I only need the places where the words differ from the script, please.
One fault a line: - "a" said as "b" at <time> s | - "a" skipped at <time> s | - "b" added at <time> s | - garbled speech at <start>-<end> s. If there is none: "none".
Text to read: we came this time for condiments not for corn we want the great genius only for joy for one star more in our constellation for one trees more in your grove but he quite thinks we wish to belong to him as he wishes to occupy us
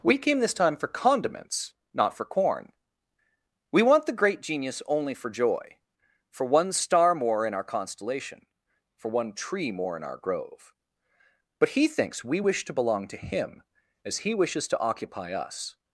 - "trees" said as "tree" at 9.3 s
- "your" said as "our" at 10.0 s
- "quite" skipped at 11.9 s